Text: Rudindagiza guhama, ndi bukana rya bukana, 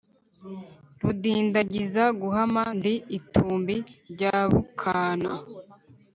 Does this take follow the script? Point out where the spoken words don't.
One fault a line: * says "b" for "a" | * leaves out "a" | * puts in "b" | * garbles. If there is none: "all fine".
* says "itumbi" for "bukana"